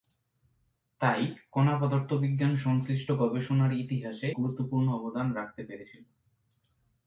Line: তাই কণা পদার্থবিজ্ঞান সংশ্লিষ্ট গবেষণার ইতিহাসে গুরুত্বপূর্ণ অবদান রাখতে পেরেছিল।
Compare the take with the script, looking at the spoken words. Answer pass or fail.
pass